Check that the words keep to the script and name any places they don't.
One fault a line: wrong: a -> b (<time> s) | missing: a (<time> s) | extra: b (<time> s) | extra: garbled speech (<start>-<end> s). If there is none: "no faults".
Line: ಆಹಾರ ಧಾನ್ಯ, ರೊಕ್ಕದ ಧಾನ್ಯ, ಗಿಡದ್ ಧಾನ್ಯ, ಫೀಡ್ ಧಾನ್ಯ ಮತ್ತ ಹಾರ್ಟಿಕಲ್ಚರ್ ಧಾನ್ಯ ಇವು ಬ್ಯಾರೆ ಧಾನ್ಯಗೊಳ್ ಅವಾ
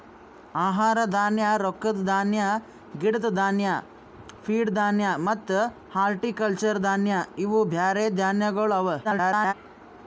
extra: garbled speech (9.0-9.5 s)